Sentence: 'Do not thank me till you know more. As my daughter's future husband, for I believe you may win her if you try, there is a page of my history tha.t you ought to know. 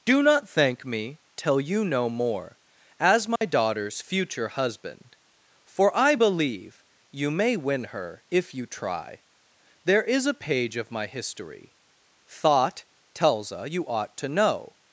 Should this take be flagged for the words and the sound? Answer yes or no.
yes